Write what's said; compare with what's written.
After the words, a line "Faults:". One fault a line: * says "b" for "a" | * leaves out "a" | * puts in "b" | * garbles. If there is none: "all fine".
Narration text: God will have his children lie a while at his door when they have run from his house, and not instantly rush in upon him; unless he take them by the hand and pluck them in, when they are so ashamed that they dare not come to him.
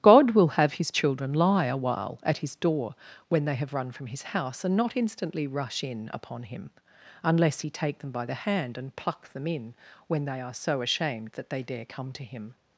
God will have his children lie a while at his door when they have run from his house, and not instantly rush in upon him; unless he take them by the hand and pluck them in, when they are so ashamed that they dare come to him.
Faults:
* leaves out "not"